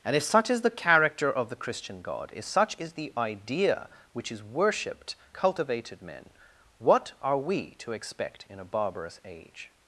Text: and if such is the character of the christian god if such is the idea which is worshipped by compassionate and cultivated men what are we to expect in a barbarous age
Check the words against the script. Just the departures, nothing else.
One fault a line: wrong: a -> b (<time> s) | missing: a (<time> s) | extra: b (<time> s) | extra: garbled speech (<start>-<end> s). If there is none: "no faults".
missing: by compassionate and (5.2 s)